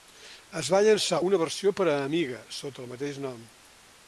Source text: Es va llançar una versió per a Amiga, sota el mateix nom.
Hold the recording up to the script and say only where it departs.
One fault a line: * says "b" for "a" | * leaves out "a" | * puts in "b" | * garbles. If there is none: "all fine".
all fine